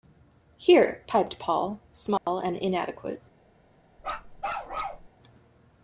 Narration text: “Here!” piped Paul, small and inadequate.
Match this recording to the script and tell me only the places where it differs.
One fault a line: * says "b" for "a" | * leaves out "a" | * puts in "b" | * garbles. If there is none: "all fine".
all fine